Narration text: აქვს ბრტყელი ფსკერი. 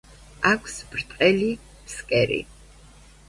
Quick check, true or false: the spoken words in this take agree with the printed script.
true